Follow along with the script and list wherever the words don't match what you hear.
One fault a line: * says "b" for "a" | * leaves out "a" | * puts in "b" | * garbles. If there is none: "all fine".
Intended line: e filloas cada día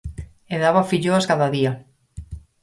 * puts in "daba"